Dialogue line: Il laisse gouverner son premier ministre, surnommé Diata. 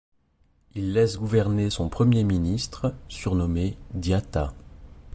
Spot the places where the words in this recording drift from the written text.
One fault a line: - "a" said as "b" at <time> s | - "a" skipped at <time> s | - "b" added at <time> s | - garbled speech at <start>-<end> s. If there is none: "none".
none